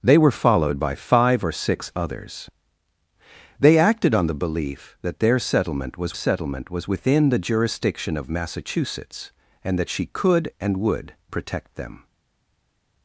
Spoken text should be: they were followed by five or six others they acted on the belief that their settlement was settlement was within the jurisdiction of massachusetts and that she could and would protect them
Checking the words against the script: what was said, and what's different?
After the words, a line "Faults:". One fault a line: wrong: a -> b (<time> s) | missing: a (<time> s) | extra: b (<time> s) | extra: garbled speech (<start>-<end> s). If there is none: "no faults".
they were followed by five or six others they acted on the belief that their settlement was settlement was within the jurisdiction of massachusetts and that she could and would protect them
Faults:
no faults